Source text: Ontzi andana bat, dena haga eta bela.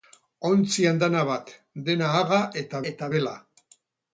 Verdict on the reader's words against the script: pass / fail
fail